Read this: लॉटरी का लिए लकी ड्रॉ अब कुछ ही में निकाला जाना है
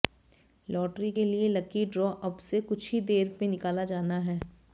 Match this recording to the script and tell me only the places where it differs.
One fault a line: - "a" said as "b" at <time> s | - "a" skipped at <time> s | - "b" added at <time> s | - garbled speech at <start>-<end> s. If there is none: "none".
- "का" said as "के" at 1.1 s
- "से" added at 2.4 s
- "देर" added at 3.1 s